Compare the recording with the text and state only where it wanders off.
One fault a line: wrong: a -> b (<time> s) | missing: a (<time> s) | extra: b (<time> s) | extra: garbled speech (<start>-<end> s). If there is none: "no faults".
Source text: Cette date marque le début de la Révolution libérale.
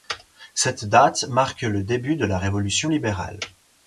no faults